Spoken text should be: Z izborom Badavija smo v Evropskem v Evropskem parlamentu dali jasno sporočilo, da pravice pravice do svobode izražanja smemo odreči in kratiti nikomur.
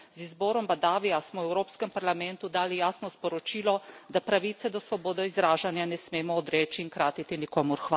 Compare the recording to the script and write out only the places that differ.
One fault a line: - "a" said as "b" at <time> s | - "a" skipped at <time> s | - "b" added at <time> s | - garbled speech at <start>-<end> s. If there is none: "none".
- "v Evropskem" skipped at 1.9 s
- "pravice" skipped at 4.7 s
- "ne" added at 5.8 s